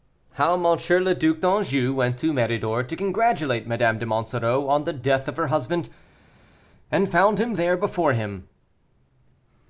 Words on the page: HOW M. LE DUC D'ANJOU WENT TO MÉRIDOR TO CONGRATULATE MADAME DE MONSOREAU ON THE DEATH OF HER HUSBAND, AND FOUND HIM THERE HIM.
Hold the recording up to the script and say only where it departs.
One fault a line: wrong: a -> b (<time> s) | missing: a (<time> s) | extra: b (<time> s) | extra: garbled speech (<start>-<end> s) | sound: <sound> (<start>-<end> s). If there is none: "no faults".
extra: BEFORE (7.8 s)